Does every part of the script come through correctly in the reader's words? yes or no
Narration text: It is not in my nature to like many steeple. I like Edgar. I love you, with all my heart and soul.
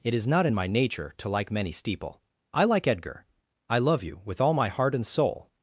yes